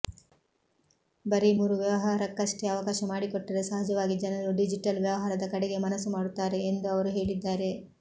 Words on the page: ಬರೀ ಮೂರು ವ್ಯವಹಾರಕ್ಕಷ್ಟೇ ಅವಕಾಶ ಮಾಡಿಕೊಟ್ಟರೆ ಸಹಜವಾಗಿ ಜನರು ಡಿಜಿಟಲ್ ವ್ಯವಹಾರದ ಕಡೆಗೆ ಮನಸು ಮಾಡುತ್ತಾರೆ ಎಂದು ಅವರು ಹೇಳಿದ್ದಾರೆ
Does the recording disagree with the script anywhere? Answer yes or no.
no